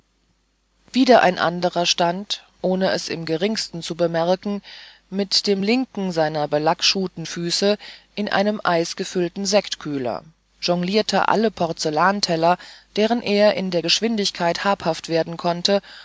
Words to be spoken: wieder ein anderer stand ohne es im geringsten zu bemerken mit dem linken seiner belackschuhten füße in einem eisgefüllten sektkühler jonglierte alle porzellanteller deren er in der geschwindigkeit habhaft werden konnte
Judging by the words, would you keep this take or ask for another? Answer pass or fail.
pass